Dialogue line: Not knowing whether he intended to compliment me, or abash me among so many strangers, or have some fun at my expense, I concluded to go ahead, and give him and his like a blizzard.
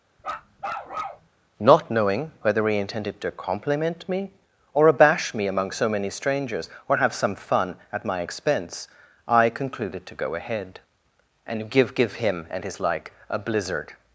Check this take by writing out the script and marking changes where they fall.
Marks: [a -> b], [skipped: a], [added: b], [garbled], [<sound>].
[bark] Not knowing whether he intended to compliment me, or abash me among so many strangers, or have some fun at my expense, I concluded to go ahead, and give [added: give] him and his like a blizzard.